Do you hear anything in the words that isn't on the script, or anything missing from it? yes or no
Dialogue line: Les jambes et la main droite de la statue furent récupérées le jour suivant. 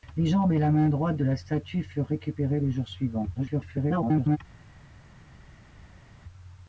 yes